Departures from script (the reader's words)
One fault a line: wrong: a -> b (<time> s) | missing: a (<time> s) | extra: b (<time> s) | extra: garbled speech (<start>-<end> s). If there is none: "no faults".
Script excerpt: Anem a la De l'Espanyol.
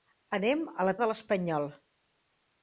no faults